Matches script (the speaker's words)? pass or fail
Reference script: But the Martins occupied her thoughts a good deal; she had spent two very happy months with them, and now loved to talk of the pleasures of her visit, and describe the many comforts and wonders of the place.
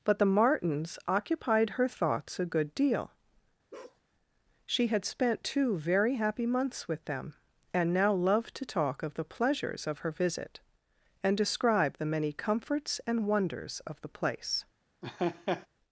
pass